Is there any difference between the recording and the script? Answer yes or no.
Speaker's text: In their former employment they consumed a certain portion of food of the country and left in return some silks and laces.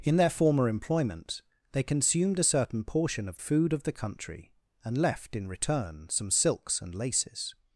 no